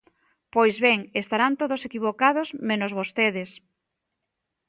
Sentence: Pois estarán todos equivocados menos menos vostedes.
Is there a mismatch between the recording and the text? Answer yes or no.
yes